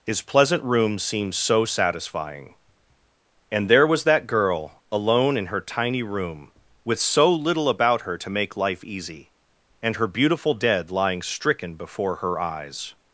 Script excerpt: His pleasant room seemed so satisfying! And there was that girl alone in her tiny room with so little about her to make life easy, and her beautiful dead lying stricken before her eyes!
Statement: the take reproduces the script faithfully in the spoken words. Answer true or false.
true